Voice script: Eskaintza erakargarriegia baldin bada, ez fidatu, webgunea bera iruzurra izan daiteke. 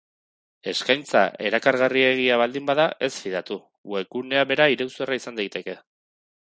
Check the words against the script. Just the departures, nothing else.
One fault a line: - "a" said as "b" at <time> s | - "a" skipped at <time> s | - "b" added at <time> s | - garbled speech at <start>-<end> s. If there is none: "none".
none